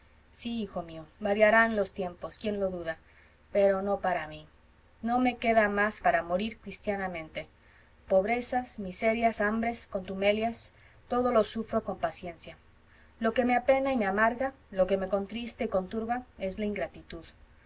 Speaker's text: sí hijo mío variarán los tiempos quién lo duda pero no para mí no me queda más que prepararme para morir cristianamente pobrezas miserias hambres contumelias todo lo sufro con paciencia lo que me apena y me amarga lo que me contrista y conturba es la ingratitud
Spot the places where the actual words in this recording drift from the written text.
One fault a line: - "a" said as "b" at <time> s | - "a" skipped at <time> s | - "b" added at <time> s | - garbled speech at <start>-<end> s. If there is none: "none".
- "que prepararme" skipped at 6.0 s